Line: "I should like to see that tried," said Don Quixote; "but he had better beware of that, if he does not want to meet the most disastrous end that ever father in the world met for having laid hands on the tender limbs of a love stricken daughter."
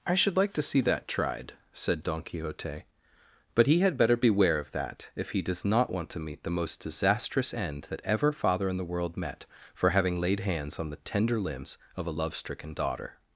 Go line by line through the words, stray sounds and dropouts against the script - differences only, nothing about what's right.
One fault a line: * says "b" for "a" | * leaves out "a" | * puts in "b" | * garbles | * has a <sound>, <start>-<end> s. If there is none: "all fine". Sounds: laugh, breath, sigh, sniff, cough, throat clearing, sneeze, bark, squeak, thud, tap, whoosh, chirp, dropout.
all fine